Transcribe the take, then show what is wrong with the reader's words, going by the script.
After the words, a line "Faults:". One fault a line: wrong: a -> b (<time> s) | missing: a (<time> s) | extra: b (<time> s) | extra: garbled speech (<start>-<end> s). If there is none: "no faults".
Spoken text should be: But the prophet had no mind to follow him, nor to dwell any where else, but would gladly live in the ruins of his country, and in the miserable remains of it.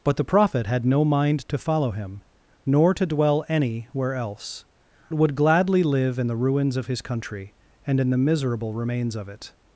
But the prophet had no mind to follow him, nor to dwell any where else, would gladly live in the ruins of his country, and in the miserable remains of it.
Faults:
missing: but (4.7 s)